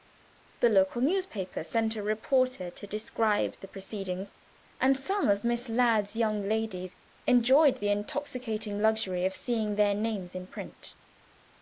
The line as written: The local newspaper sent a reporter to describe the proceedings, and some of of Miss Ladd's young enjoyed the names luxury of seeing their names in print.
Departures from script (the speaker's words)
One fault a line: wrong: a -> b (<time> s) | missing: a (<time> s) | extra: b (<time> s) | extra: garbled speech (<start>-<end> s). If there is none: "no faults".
missing: of (5.4 s)
extra: ladies (6.5 s)
wrong: names -> intoxicating (7.9 s)